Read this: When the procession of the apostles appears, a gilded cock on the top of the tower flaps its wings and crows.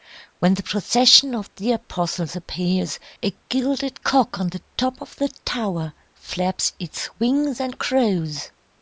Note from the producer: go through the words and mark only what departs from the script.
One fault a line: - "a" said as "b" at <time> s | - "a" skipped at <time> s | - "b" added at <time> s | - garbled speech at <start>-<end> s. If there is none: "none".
none